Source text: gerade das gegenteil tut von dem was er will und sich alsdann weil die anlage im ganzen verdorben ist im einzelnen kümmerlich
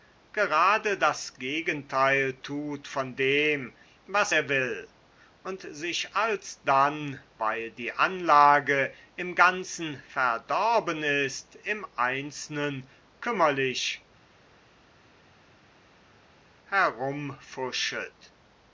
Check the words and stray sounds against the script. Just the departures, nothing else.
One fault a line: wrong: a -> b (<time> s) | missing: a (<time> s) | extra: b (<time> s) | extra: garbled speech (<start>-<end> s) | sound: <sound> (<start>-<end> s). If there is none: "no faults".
no faults